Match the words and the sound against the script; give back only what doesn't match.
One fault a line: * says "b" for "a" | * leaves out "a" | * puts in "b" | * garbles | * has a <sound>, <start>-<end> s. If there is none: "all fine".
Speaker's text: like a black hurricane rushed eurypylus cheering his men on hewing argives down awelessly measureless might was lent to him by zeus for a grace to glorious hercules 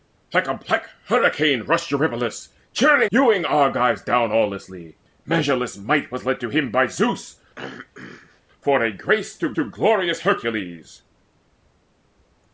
* leaves out "his men on"
* has a throat clearing, 7.5-8.4 s
* puts in "to"